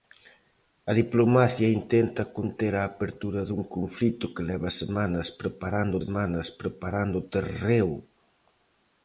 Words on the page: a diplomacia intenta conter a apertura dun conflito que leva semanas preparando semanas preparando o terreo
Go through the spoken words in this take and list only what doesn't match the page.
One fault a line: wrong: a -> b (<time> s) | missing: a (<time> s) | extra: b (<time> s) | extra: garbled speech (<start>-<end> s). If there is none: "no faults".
no faults